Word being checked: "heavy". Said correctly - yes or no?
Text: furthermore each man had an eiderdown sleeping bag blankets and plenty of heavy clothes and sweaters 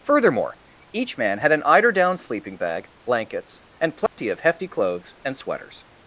no